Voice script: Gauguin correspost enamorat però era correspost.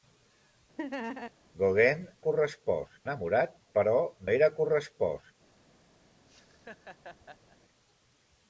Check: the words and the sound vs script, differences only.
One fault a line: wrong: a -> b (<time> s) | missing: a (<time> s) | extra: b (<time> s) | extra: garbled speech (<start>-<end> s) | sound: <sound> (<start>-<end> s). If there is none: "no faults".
sound: laugh (0.8-1.3 s)
sound: laugh (6.3-7.6 s)